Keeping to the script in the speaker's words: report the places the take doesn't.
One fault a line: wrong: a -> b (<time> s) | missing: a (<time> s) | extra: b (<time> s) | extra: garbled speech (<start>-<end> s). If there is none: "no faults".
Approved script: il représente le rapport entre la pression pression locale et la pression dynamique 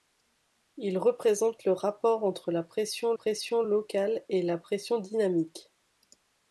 no faults